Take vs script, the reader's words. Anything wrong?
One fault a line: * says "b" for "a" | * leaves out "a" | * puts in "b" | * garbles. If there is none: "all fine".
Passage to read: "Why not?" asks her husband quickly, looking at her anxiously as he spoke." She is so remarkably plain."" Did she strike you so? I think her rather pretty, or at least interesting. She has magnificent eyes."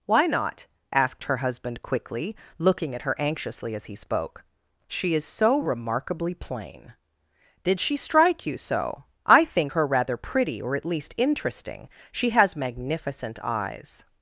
* says "asked" for "asks"